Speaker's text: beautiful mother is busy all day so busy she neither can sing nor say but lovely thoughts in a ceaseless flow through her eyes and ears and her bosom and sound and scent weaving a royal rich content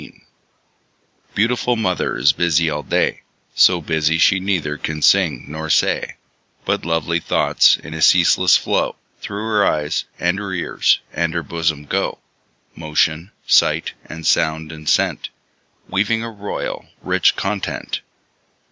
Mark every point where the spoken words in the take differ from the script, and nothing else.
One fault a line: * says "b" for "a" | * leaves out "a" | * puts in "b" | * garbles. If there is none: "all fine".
* puts in "her"
* puts in "go motion sight"